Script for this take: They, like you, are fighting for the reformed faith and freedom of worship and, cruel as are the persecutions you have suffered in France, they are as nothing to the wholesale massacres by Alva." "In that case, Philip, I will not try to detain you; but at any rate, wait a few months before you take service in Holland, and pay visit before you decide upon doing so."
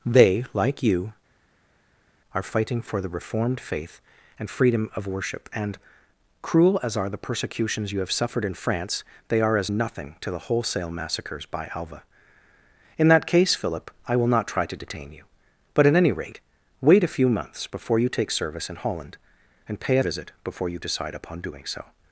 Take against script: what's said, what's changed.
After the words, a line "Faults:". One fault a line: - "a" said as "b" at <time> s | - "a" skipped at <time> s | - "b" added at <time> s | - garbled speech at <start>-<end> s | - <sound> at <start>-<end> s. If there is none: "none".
They, like you, are fighting for the reformed faith and freedom of worship and, cruel as are the persecutions you have suffered in France, they are as nothing to the wholesale massacres by Alva." "In that case, Philip, I will not try to detain you; but at any rate, wait a few months before you take service in Holland, and pay visit before you decide upon doing so."
Faults:
none